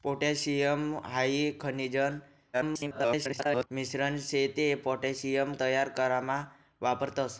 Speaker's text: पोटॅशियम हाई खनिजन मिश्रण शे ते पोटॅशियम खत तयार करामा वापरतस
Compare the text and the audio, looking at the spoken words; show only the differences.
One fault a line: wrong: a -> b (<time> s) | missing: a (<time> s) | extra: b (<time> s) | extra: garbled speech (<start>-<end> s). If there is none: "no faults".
extra: garbled speech (2.5-3.7 s)
missing: खत (5.5 s)